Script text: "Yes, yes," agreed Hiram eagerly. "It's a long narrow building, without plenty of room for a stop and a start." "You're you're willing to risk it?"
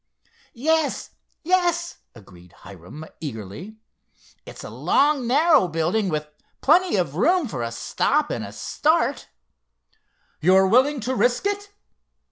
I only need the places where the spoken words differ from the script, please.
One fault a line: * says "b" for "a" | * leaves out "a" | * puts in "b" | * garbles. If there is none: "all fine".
* says "with" for "without"
* leaves out "you're"